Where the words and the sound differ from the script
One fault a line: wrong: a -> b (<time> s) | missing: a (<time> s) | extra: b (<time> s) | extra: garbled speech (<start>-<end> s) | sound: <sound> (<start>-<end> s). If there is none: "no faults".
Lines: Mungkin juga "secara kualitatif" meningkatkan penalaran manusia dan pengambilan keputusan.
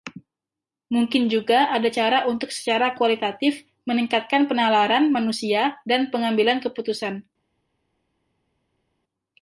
extra: ada cara untuk (1.7 s)